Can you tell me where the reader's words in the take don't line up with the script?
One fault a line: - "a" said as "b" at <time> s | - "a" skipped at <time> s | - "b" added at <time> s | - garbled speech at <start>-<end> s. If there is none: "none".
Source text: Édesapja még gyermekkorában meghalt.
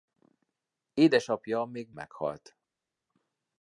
- "gyermekkorában" skipped at 1.9 s